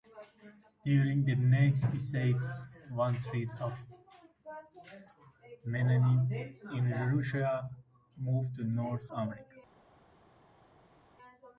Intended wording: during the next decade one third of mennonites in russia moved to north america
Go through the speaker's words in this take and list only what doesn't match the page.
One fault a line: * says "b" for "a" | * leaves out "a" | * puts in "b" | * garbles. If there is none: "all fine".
all fine